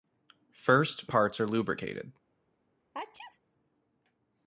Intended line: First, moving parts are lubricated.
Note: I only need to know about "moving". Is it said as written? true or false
false